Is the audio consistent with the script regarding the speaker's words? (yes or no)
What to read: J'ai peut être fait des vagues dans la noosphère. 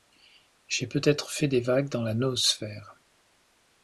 yes